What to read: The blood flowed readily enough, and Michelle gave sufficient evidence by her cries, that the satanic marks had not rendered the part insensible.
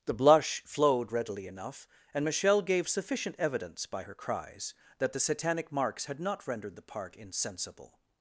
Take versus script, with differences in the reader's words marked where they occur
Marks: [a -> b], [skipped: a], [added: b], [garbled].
The [blood -> blush] flowed readily enough, and Michelle gave sufficient evidence by her cries, that the satanic marks had not rendered the part insensible.